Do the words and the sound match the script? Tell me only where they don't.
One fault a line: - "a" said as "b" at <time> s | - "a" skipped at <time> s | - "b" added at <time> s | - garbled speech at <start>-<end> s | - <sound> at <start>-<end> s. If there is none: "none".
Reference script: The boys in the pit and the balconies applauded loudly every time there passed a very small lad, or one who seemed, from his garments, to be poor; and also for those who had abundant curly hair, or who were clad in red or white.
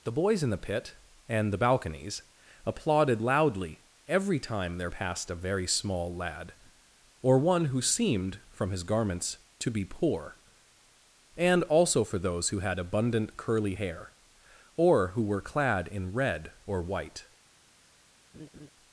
- laugh at 18.3-18.7 s